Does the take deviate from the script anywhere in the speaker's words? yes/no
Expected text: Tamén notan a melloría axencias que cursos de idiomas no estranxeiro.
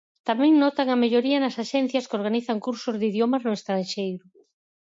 yes